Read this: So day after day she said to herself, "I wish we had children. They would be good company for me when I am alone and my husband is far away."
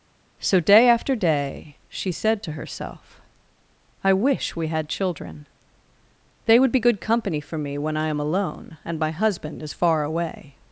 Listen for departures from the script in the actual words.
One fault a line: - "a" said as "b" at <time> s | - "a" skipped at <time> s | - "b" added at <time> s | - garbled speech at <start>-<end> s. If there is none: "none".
none